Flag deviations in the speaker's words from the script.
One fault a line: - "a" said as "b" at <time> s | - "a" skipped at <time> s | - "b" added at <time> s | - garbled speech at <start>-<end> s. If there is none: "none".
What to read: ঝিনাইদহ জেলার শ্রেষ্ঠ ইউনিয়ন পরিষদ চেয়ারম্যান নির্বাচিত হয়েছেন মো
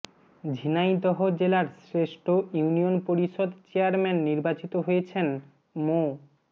none